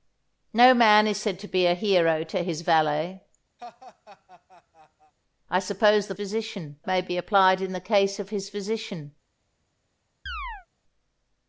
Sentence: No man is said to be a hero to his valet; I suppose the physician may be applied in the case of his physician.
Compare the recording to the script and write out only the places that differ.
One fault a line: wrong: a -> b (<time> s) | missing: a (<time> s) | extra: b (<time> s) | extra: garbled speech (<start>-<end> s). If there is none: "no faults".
no faults